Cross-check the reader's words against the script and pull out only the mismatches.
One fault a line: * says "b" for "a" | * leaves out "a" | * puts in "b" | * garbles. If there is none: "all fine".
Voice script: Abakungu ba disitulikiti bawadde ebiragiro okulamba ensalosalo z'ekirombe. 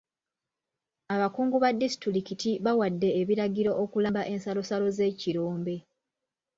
all fine